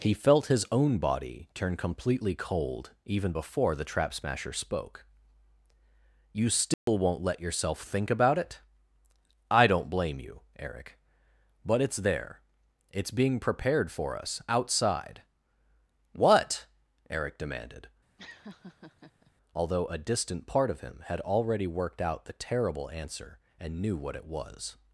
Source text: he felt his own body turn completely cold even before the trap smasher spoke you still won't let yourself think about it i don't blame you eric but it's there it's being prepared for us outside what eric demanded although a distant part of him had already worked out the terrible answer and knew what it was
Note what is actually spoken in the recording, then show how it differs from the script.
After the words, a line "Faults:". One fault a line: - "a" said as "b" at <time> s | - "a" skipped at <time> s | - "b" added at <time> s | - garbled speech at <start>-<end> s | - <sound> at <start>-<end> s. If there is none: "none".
he felt his own body turn completely cold even before the trap smasher spoke you still won't let yourself think about it i don't blame you eric but it's there it's being prepared for us outside what eric demanded although a distant part of him had already worked out the terrible answer and knew what it was
Faults:
- dropout at 6.7-6.9 s
- laugh at 18.2-19.3 s